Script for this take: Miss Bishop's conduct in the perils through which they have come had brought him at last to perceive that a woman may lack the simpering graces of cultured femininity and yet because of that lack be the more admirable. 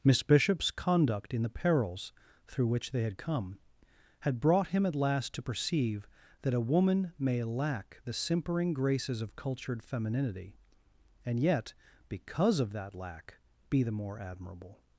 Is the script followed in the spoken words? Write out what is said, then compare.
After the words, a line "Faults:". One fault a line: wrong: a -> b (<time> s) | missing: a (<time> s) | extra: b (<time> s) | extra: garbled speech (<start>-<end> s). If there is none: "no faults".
Miss Bishop's conduct in the perils through which they had come had brought him at last to perceive that a woman may lack the simpering graces of cultured femininity and yet because of that lack be the more admirable.
Faults:
wrong: have -> had (3.0 s)